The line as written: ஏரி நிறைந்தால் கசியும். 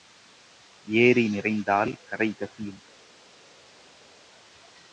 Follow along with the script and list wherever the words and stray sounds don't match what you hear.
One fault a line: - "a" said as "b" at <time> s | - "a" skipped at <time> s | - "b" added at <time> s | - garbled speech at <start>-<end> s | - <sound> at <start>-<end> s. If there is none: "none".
- "கரை" added at 2.1 s